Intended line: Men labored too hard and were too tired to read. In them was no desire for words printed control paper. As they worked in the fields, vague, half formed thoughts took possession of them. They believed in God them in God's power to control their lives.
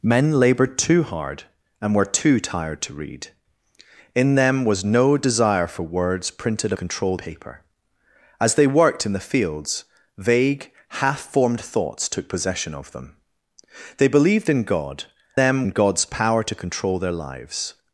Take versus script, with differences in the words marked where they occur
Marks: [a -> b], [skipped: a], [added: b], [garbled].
Men labored too hard and were too tired to read. In them was no desire for words printed control paper. As they worked in the fields, vague, half formed thoughts took possession of them. They believed in God them in God's power to control their lives.